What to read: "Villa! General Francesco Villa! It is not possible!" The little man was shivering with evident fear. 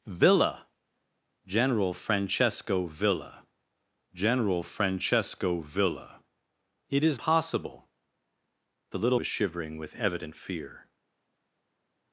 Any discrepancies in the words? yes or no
yes